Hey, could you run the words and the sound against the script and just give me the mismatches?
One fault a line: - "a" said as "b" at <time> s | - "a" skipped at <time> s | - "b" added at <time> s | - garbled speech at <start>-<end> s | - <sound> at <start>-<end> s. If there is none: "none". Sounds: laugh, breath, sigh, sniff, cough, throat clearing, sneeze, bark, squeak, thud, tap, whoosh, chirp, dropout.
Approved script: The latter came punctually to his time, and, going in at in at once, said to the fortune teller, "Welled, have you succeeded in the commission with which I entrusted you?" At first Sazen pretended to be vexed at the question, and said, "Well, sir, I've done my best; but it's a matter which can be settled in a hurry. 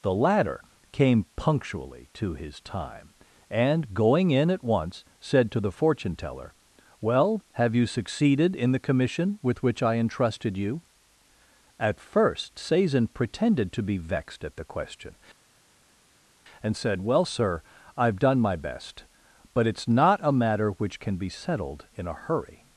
- "in at" skipped at 4.6 s
- "Welled" said as "Well" at 7.0 s
- "not" added at 19.9 s